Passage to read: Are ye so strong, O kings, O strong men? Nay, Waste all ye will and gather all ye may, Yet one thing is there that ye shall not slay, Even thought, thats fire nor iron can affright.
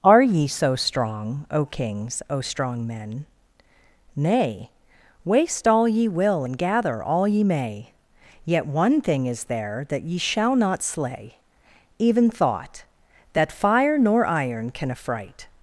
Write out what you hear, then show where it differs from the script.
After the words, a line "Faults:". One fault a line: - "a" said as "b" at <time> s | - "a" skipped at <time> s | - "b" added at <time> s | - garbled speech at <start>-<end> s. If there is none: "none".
Are ye so strong, O kings, O strong men? Nay, Waste all ye will and gather all ye may, Yet one thing is there that ye shall not slay, Even thought, that fire nor iron can affright.
Faults:
- "thats" said as "that" at 13.3 s